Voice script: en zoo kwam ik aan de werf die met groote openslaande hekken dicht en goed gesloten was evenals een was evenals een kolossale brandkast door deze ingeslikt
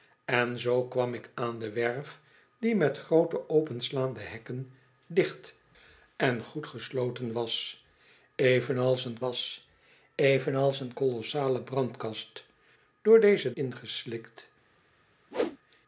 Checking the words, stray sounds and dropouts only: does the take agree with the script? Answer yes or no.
no